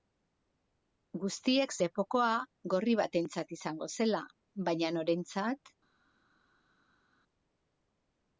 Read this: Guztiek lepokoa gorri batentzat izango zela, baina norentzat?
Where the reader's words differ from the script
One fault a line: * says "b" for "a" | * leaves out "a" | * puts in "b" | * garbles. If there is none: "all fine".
all fine